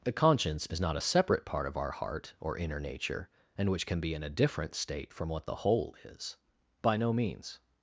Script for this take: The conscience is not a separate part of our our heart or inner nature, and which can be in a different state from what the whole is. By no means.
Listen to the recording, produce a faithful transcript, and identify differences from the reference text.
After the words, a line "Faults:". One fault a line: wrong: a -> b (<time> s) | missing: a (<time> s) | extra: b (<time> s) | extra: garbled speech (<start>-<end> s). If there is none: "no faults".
The conscience is not a separate part of our heart or inner nature, and which can be in a different state from what the whole is. By no means.
Faults:
missing: our (1.9 s)